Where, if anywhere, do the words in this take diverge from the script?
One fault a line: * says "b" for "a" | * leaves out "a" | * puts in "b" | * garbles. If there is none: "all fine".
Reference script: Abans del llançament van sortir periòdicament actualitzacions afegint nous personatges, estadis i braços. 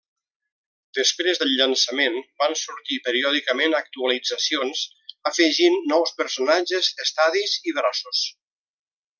* says "Després" for "Abans"